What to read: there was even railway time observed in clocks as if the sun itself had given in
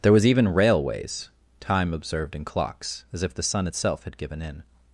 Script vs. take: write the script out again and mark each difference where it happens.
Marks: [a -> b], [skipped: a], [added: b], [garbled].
there was even [railway -> railways] time observed in clocks as if the sun itself had given in